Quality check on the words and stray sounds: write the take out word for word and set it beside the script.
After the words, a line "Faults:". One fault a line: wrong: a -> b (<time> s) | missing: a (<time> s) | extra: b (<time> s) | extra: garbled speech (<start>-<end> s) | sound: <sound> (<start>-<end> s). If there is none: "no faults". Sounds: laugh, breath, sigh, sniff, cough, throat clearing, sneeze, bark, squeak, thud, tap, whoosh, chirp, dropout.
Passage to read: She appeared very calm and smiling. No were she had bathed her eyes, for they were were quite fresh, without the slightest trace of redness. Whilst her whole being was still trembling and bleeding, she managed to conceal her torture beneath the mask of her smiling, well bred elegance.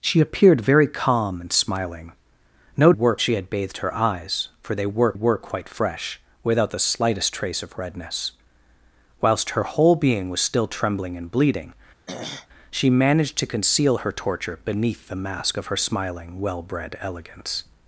She appeared very calm and smiling. No were she had bathed her eyes, for they were were quite fresh, without the slightest trace of redness. Whilst her whole being was still trembling and bleeding, she managed to conceal her torture beneath the mask of her smiling, well bred elegance.
Faults:
sound: throat clearing (12.1-12.5 s)